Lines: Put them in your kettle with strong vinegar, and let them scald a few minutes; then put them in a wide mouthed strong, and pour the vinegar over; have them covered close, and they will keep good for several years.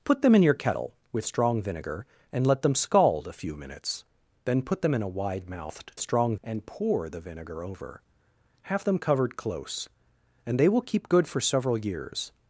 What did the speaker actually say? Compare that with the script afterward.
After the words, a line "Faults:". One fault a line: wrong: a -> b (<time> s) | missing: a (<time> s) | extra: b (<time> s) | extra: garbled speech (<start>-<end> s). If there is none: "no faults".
Put them in your kettle with strong vinegar, and let them scald a few minutes; then put them in a wide mouthed strong, and pour the vinegar over; have them covered close, and they will keep good for several years.
Faults:
no faults